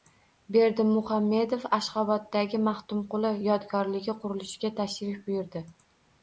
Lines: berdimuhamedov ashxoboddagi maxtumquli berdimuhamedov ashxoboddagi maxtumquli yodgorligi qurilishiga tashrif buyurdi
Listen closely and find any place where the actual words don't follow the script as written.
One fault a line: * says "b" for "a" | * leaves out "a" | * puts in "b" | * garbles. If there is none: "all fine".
* leaves out "berdimuhamedov ashxoboddagi maxtumquli"